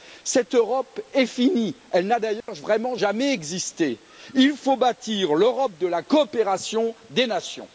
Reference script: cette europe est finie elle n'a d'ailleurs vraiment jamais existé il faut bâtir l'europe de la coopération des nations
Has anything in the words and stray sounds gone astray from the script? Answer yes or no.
yes